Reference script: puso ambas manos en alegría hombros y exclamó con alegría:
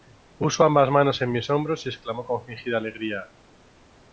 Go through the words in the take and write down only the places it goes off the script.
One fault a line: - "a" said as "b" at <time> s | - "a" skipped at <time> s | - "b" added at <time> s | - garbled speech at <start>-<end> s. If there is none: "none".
- "alegría" said as "mis" at 1.3 s
- "fingida" added at 2.4 s